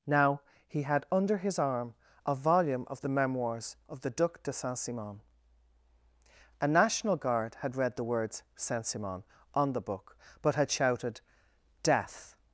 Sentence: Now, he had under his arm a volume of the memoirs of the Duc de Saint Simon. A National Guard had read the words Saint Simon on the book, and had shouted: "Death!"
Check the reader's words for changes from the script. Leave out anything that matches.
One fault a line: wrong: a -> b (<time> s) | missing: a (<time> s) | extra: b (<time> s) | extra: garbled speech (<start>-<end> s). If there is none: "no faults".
wrong: and -> but (10.4 s)